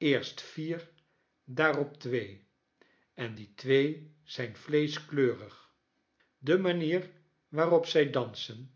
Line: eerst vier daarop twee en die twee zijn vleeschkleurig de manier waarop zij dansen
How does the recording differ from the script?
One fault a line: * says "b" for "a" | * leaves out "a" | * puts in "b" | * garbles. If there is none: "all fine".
all fine